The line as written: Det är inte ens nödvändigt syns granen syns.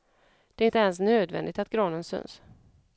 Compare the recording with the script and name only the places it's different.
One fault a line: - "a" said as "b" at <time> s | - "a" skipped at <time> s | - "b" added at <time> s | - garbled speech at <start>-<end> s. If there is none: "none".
- "syns" said as "att" at 1.6 s